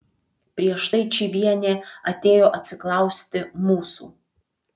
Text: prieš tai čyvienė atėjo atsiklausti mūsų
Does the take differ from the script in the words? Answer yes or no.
no